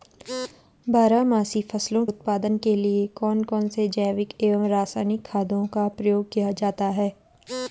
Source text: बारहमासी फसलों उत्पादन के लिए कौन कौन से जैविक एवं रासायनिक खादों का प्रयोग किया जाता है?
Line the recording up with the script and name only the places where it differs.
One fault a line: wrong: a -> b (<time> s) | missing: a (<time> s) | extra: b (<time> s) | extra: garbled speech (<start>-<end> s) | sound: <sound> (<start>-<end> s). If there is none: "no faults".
no faults